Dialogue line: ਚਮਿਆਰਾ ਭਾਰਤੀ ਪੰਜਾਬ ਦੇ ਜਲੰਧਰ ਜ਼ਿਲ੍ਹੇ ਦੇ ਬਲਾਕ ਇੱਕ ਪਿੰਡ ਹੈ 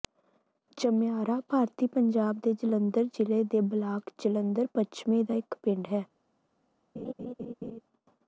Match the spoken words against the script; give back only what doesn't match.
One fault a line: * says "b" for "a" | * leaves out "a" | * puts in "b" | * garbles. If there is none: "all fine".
* puts in "ਜਲੰਧਰ ਪੱਛਮੀ ਦਾ"